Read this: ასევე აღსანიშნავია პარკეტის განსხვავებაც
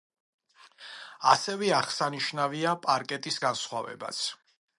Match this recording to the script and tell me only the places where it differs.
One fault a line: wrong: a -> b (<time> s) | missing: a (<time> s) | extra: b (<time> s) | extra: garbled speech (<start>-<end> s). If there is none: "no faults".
no faults